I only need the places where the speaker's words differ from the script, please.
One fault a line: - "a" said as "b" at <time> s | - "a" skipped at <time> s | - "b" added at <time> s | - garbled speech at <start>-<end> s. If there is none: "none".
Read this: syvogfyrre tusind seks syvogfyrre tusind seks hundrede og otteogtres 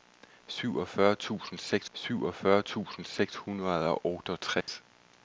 none